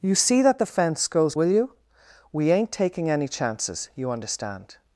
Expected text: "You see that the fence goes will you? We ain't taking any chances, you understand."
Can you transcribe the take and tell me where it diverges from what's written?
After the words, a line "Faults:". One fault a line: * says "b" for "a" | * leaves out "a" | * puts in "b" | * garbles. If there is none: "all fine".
"You see that the fence goes will you? We ain't taking any chances, you understand."
Faults:
all fine